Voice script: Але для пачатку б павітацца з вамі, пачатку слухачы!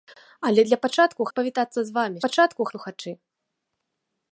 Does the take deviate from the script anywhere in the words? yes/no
no